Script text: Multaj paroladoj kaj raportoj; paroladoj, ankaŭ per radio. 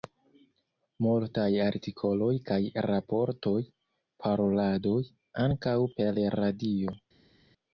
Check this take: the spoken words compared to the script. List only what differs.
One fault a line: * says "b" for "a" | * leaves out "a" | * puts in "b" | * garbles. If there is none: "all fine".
* says "artikoloj" for "paroladoj"